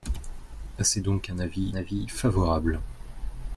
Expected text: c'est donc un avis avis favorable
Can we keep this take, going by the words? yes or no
yes